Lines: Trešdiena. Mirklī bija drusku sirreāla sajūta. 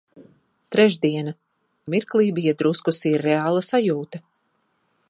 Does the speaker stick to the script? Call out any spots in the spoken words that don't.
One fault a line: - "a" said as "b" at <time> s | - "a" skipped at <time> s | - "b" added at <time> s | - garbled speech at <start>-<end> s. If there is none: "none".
none